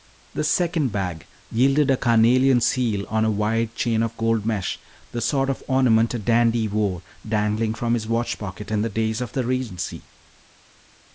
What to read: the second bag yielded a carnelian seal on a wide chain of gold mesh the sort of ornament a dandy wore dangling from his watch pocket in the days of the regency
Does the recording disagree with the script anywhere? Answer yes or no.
no